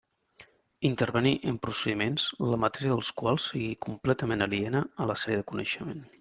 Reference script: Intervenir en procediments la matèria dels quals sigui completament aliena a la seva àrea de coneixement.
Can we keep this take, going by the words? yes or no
no